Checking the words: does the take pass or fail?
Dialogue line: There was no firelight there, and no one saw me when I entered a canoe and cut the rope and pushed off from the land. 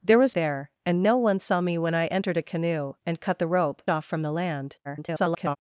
fail